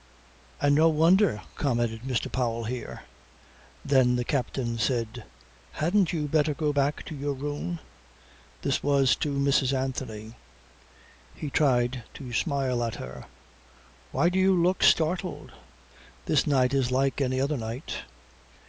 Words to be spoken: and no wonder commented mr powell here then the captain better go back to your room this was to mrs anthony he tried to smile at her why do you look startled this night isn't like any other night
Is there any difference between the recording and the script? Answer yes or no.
yes